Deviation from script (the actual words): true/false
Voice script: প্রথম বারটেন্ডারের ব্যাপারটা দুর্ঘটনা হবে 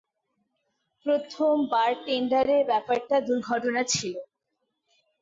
true